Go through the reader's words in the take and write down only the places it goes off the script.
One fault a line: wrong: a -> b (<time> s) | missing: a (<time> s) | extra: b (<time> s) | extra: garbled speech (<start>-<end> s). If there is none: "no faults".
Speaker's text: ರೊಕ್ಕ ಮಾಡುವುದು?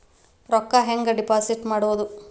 extra: ಹೆಂಗೆ ಡಿಪಾಸಿಟ್ (0.8 s)